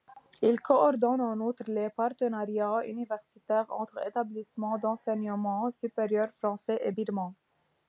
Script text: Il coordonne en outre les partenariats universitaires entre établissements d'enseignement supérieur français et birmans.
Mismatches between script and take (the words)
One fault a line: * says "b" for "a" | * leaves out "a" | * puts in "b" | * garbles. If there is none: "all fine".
all fine